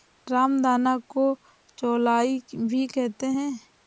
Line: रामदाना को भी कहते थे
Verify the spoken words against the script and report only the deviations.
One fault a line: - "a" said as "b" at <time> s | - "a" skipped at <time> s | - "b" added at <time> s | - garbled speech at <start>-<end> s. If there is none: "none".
- "चौलाई" added at 1.8 s
- "थे" said as "हैं" at 3.4 s